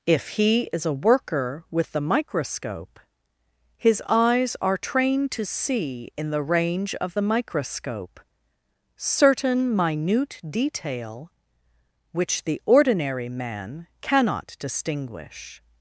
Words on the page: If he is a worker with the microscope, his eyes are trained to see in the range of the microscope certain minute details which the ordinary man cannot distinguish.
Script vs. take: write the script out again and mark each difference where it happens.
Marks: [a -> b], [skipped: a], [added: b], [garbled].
If he is a worker with the microscope, his eyes are trained to see in the range of the microscope certain minute [details -> detail] which the ordinary man cannot distinguish.